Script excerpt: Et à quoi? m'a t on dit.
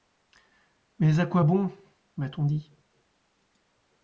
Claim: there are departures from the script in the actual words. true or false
true